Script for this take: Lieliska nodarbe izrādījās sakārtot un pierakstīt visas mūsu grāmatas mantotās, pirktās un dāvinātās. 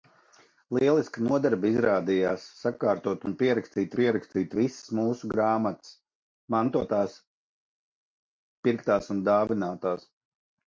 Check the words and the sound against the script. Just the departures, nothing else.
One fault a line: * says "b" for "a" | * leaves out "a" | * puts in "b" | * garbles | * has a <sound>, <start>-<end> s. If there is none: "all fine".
* puts in "pierakstīt"